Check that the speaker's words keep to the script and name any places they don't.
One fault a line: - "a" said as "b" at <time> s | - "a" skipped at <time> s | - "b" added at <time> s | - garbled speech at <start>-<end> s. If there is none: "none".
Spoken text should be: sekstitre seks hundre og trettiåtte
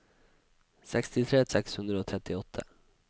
none